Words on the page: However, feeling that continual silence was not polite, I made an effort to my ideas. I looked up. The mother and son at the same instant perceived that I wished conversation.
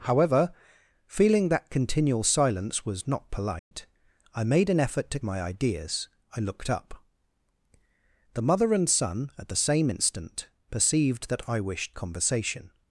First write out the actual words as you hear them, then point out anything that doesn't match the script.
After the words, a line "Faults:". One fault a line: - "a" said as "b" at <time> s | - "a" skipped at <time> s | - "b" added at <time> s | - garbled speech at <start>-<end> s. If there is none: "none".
However, feeling that continual silence was not polite, I made an effort to my ideas. I looked up. The mother and son at the same instant perceived that I wished conversation.
Faults:
none